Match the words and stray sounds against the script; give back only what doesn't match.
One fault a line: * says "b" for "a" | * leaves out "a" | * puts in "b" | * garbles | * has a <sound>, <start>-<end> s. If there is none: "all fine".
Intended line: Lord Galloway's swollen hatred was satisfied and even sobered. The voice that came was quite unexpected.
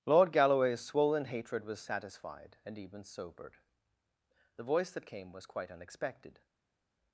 all fine